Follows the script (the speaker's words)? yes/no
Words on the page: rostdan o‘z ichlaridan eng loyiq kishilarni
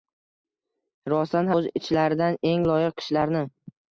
yes